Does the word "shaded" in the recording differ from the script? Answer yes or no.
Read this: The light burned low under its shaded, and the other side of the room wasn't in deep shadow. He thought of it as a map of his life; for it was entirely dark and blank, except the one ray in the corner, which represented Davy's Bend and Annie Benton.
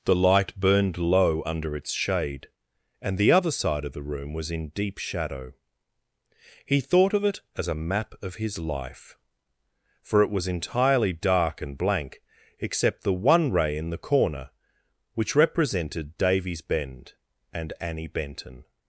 yes